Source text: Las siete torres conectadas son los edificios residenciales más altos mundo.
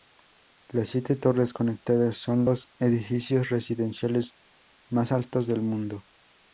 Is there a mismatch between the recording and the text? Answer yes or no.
yes